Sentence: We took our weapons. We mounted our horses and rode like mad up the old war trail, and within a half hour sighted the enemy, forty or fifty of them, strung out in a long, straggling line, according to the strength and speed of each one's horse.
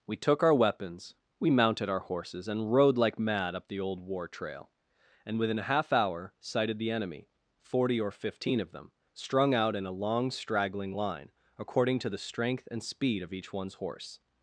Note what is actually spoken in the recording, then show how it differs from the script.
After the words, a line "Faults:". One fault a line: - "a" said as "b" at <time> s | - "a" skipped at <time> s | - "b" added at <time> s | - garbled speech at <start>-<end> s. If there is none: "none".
We took our weapons. We mounted our horses and rode like mad up the old war trail, and within a half hour sighted the enemy, forty or fifteen of them, strung out in a long, straggling line, according to the strength and speed of each one's horse.
Faults:
- "fifty" said as "fifteen" at 8.1 s